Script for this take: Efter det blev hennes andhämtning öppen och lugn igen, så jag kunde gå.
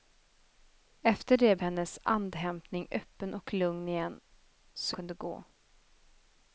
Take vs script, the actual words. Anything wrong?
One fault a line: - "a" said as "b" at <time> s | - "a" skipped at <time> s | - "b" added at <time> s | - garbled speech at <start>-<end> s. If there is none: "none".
- "blev" skipped at 1.6 s
- "jag" skipped at 5.0 s